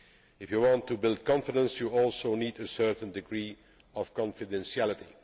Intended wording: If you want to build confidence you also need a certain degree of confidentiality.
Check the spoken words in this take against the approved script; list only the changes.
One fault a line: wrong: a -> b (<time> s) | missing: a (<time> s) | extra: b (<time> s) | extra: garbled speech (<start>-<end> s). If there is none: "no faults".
no faults